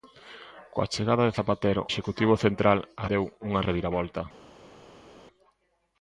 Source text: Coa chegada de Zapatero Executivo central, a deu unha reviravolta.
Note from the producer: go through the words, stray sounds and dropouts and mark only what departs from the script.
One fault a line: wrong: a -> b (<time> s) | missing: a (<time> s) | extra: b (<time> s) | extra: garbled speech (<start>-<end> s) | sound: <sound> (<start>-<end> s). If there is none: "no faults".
no faults